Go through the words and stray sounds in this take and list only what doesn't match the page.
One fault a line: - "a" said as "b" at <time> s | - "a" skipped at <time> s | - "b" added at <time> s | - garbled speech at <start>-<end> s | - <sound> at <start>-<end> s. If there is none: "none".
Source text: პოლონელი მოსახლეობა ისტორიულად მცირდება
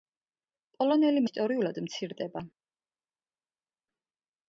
- "მოსახლეობა" skipped at 1.2 s